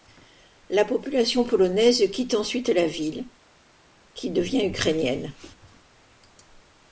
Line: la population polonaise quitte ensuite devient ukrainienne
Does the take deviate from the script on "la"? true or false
false